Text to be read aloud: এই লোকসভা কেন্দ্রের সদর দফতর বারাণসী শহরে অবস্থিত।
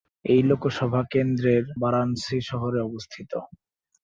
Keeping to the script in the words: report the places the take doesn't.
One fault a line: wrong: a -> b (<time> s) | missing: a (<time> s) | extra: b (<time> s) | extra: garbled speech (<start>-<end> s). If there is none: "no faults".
missing: সদর দফতর (1.6 s)